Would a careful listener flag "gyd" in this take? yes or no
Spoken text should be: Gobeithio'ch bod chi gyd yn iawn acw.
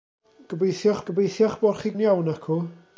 yes